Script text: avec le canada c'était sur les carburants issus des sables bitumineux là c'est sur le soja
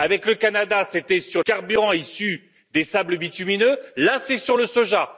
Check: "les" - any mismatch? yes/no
yes